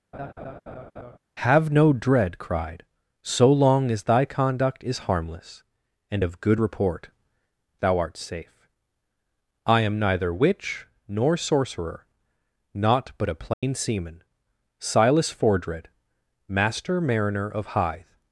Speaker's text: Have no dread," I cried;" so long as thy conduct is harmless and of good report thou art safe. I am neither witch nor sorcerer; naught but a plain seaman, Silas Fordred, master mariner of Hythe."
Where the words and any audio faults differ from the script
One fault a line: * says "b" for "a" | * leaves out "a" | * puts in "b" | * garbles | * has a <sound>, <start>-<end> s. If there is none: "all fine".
* has a laugh, 0.1-1.2 s
* leaves out "I"
* has a dropout, 13.5-13.6 s